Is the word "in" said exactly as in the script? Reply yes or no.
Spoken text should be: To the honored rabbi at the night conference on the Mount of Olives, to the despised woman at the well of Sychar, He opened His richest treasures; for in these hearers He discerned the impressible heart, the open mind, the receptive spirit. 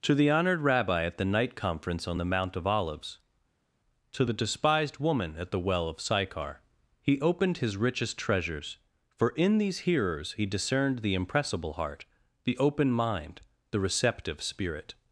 yes